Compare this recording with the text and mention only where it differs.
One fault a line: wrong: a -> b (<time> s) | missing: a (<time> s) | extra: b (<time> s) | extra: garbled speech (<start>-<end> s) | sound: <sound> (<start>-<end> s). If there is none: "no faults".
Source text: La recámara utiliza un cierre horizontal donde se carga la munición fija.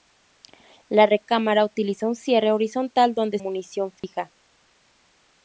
missing: se carga la (3.4 s)
sound: dropout (4.0-4.0 s)